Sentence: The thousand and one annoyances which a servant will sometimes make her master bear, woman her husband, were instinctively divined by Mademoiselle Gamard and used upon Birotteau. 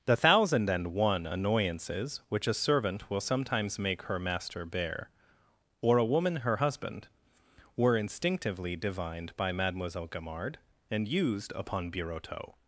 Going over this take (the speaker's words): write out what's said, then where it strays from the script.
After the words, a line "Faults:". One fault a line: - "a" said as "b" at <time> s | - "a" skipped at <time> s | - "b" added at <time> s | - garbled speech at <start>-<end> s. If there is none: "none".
The thousand and one annoyances which a servant will sometimes make her master bear, or a woman her husband, were instinctively divined by Mademoiselle Gamard and used upon Birotteau.
Faults:
- "or a" added at 5.8 s